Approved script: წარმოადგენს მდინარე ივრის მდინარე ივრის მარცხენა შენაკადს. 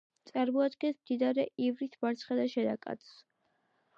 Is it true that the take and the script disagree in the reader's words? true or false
true